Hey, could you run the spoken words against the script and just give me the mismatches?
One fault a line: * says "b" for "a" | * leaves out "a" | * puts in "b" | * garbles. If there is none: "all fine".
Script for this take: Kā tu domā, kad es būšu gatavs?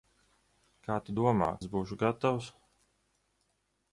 * leaves out "kad"